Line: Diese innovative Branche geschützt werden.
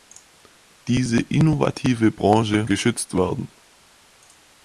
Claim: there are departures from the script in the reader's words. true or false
false